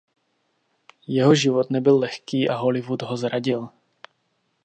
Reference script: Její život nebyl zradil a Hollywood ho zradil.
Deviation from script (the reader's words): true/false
true